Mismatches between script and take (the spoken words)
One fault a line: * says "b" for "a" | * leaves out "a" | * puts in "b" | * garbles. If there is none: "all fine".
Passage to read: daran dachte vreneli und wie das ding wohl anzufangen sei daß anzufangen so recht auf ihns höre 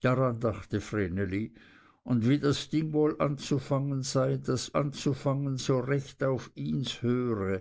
all fine